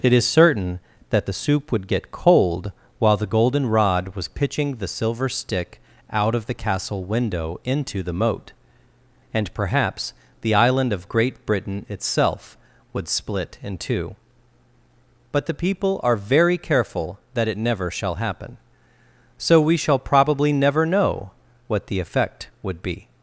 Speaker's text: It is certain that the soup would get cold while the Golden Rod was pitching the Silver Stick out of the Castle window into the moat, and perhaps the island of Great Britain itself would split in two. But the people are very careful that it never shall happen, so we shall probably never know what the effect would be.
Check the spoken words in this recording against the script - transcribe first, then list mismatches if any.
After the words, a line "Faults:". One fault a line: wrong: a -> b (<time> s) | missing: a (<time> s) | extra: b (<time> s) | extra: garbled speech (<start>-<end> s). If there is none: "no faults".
It is certain that the soup would get cold while the Golden Rod was pitching the Silver Stick out of the Castle window into the moat, and perhaps the island of Great Britain itself would split in two. But the people are very careful that it never shall happen, so we shall probably never know what the effect would be.
Faults:
no faults